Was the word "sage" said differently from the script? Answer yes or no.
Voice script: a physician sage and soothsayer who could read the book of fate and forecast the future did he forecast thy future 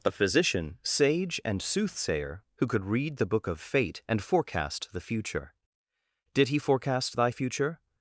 no